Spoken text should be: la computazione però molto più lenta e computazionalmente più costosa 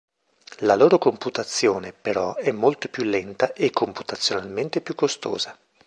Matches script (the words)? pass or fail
fail